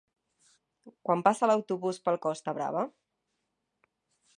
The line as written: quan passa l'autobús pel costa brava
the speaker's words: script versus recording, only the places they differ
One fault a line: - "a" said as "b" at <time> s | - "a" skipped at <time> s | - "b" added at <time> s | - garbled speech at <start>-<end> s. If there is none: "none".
none